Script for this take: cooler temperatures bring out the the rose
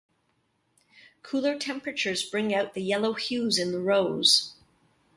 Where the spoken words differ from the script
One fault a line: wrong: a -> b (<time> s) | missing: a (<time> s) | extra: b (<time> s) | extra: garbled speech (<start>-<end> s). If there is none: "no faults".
extra: yellow hues in (2.8 s)